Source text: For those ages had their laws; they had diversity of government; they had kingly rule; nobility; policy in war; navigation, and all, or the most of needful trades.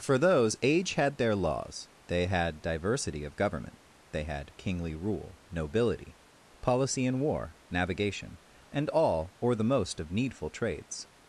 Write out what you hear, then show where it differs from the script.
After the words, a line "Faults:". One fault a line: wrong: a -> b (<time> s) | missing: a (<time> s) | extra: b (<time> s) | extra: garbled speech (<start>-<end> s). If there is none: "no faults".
For those age had their laws; they had diversity of government; they had kingly rule; nobility; policy in war; navigation, and all, or the most of needful trades.
Faults:
wrong: ages -> age (0.6 s)